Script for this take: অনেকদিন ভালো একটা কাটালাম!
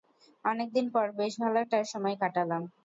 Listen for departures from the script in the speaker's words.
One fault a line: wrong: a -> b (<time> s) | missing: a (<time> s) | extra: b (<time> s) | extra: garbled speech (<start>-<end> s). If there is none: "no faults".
extra: পর বেশ (0.9 s)
extra: সময় (1.9 s)